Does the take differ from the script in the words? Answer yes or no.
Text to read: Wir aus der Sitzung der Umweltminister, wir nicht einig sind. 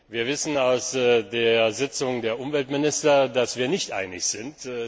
yes